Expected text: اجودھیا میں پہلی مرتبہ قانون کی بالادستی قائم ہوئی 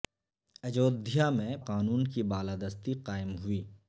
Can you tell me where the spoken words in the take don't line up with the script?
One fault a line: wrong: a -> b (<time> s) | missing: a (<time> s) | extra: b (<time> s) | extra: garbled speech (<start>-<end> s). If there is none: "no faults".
missing: پہلی مرتبہ (1.6 s)